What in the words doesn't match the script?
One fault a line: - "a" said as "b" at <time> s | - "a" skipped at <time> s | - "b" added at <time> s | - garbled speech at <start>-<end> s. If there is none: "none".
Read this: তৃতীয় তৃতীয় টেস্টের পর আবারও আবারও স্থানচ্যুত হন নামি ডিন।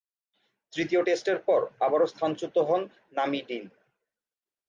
- "তৃতীয়" skipped at 1.0 s
- "আবারও" skipped at 2.1 s